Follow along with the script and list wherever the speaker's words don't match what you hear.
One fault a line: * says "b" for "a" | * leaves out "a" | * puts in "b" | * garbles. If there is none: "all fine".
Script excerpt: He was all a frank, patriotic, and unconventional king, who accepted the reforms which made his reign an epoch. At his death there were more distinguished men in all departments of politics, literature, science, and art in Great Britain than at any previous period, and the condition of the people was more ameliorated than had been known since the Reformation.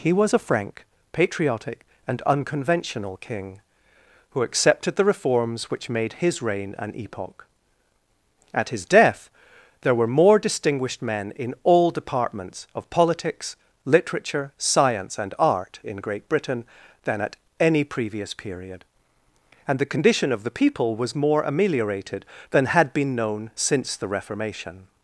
* leaves out "all"